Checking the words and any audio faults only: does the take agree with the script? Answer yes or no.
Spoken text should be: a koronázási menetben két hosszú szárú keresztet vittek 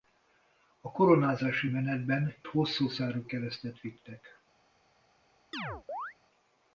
no